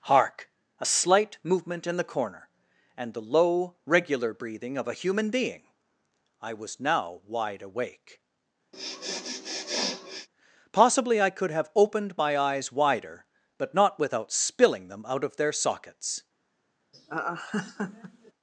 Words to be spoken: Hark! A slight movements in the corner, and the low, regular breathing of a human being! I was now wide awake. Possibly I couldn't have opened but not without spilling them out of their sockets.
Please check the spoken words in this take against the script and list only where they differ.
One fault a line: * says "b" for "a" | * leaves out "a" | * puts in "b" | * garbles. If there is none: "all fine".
* says "movement" for "movements"
* says "could" for "couldn't"
* puts in "my eyes wider"